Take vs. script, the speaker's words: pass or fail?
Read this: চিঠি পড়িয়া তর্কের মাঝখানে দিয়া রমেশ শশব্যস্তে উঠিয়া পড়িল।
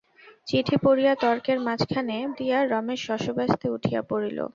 pass